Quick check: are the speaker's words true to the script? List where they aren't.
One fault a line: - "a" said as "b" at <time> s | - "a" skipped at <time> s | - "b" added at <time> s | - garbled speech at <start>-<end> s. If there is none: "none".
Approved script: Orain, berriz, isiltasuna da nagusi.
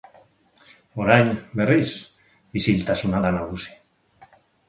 none